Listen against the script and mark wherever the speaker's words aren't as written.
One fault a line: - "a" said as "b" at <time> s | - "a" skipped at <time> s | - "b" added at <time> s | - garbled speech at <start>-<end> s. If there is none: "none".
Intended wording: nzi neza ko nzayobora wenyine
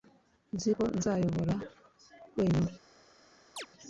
- "neza" skipped at 0.7 s